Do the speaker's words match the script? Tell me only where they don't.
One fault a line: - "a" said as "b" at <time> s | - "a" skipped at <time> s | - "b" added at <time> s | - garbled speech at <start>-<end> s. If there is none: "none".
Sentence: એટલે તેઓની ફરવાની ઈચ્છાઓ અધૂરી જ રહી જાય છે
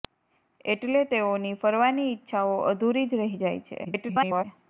- garbled speech at 3.8-4.4 s